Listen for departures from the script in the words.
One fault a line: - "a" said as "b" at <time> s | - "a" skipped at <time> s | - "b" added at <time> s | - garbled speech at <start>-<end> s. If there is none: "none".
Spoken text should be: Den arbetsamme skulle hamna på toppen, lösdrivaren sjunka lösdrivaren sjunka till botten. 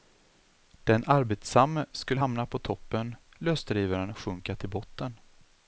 - "lösdrivaren sjunka" skipped at 4.6 s